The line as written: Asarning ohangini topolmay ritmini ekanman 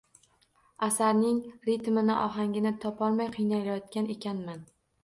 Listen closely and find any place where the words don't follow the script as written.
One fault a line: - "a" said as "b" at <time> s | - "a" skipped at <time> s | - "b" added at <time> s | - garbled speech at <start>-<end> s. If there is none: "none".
- "ritmini" added at 1.7 s
- "ritmini" said as "qiynalayotgan" at 3.4 s